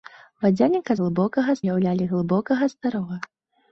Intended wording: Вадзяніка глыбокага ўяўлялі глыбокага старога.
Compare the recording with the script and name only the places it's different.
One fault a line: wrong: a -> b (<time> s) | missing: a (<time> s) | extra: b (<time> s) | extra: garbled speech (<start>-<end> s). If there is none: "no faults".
no faults